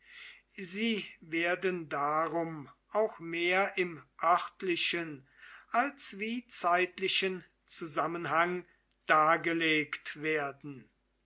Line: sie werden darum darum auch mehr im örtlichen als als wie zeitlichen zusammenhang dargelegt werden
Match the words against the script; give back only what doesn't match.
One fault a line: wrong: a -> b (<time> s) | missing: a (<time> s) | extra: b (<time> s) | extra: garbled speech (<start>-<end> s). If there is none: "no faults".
missing: darum (2.7 s)
missing: als (6.2 s)